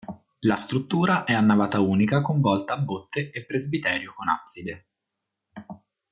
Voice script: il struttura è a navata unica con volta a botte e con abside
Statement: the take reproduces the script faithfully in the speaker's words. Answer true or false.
false